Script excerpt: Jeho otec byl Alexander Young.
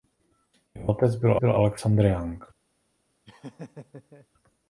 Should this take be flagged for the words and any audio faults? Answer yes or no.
yes